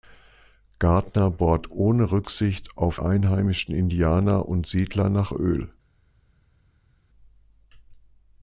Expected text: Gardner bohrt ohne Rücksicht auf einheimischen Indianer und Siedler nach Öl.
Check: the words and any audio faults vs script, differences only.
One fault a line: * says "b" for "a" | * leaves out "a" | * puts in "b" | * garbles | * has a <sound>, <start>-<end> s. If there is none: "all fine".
all fine